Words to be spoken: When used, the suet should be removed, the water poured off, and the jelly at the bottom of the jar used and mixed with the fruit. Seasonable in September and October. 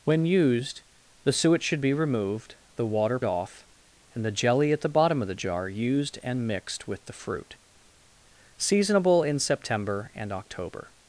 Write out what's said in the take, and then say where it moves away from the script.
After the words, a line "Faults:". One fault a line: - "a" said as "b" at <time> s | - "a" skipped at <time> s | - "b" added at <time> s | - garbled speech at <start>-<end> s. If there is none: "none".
When used, the suet should be removed, the water off, and the jelly at the bottom of the jar used and mixed with the fruit. Seasonable in September and October.
Faults:
- "poured" skipped at 3.2 s